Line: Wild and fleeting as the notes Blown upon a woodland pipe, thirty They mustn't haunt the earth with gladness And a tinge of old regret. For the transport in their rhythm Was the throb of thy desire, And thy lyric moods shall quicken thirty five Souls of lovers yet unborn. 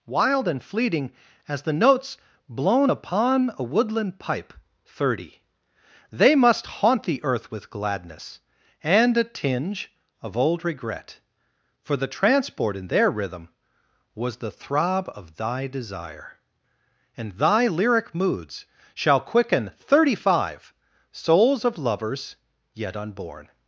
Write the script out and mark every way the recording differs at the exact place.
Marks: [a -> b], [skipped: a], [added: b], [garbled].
Wild and fleeting as the notes Blown upon a woodland pipe, thirty They [mustn't -> must] haunt the earth with gladness And a tinge of old regret. For the transport in their rhythm Was the throb of thy desire, And thy lyric moods shall quicken thirty five Souls of lovers yet unborn.